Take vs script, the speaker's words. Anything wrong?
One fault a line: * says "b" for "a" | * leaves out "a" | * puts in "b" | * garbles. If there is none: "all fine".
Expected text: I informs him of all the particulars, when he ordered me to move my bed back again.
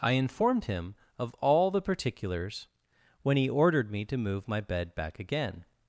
* says "informed" for "informs"